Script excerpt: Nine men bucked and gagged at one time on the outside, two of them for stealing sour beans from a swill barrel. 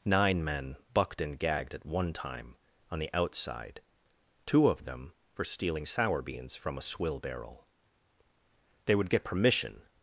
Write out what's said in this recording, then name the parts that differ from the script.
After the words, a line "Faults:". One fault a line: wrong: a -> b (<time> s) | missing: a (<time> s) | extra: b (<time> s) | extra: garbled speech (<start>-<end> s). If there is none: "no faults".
Nine men bucked and gagged at one time on the outside, two of them for stealing sour beans from a swill barrel. They would get permission
Faults:
extra: They would get permission (8.8 s)